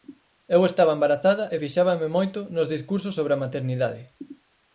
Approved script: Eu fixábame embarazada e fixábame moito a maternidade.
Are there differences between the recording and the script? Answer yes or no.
yes